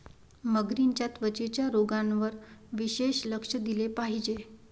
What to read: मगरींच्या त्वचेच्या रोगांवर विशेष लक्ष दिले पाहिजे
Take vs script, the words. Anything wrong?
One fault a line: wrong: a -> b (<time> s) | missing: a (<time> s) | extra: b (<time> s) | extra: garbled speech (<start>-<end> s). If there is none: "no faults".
no faults